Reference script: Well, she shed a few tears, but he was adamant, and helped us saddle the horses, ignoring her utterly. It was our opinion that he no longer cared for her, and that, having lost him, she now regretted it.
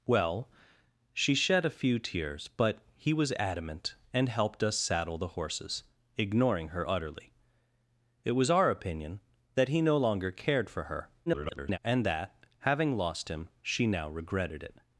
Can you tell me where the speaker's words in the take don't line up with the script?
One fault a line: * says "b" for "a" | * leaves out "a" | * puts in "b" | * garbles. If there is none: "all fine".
* garbles